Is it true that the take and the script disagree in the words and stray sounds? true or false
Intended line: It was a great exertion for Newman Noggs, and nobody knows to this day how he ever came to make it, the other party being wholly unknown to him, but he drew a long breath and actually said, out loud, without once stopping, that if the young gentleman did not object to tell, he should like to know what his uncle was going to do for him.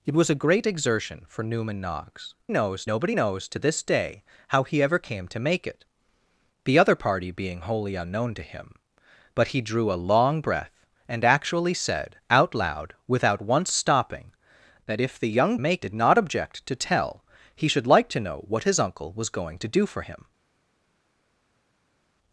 true